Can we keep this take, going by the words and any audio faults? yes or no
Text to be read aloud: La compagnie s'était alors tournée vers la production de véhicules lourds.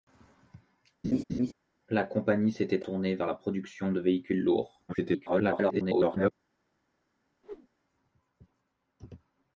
no